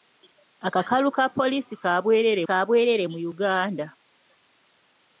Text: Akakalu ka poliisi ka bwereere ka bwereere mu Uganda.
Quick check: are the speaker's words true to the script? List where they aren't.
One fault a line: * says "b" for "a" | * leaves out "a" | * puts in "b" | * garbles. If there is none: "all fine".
all fine